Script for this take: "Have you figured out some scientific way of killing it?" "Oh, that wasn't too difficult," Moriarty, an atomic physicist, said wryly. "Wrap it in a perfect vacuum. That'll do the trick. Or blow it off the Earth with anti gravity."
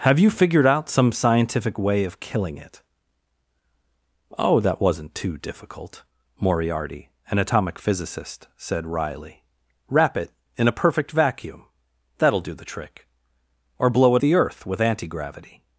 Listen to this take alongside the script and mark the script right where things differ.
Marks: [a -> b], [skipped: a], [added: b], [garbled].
"Have you figured out some scientific way of killing it?" "Oh, that wasn't too difficult," Moriarty, an atomic physicist, said wryly. "Wrap it in a perfect vacuum. That'll do the trick. Or blow it [skipped: off] the Earth with anti gravity."